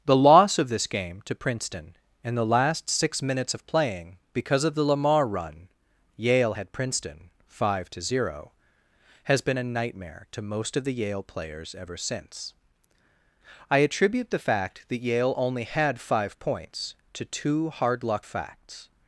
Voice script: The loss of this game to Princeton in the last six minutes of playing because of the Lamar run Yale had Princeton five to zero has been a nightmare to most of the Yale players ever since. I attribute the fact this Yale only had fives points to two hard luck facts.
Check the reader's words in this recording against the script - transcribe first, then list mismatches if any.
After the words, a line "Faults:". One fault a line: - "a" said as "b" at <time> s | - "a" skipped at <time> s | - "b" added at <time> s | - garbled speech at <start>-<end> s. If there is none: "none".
The loss of this game to Princeton in the last six minutes of playing because of the Lamar run Yale had Princeton five to zero has been a nightmare to most of the Yale players ever since. I attribute the fact that Yale only had five points to two hard luck facts.
Faults:
- "this" said as "that" at 14.9 s
- "fives" said as "five" at 16.0 s